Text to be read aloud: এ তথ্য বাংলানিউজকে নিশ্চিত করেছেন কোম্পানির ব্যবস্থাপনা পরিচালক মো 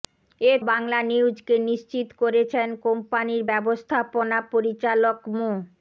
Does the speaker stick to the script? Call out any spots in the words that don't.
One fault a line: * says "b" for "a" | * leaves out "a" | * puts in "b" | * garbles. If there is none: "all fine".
* leaves out "তথ্য"